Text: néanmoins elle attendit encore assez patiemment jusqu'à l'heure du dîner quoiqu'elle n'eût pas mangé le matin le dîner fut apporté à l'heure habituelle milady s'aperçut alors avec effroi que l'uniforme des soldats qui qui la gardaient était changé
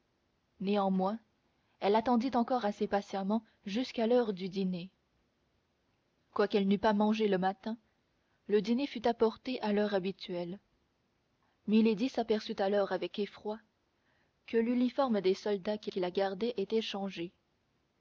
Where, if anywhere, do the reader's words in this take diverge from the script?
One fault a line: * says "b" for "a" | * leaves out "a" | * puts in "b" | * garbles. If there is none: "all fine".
all fine